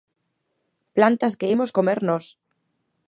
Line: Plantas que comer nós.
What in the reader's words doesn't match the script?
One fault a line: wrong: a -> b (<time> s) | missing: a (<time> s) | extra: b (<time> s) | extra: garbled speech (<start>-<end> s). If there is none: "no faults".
extra: imos (1.5 s)